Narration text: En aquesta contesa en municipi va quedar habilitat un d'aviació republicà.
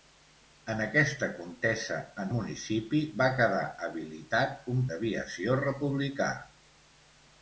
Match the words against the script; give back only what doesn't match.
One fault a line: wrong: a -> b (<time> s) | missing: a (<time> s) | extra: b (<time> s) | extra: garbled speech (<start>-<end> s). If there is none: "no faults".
no faults